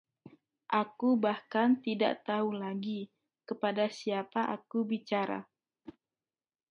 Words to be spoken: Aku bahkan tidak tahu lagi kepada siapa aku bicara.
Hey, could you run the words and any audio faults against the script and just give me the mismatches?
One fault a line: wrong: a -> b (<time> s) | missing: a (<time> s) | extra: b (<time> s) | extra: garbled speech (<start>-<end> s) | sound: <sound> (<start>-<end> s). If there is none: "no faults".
sound: whoosh (5.8-6.0 s)